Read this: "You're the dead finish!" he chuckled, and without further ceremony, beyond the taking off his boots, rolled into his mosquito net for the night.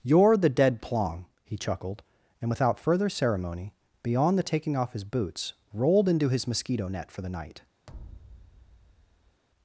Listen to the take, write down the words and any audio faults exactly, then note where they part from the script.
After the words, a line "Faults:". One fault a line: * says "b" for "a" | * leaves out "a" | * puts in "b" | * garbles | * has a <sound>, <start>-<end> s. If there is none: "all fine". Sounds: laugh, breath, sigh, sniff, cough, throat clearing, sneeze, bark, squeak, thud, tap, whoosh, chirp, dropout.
"You're the dead plong!" he chuckled, and without further ceremony, beyond the taking off his boots, rolled into his mosquito net for the night.
Faults:
* says "plong" for "finish"
* has a thud, 7.9-9.4 s